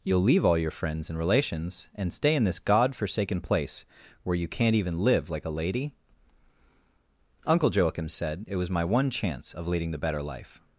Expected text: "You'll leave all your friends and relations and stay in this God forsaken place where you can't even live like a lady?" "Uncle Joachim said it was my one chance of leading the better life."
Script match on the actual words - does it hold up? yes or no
yes